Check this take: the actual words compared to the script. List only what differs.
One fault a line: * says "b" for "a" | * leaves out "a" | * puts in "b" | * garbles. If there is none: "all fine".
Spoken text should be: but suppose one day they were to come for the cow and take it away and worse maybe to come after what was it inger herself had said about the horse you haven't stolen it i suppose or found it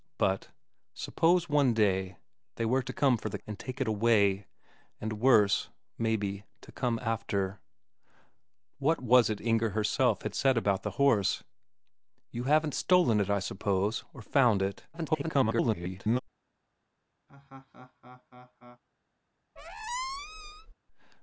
* leaves out "cow"
* garbles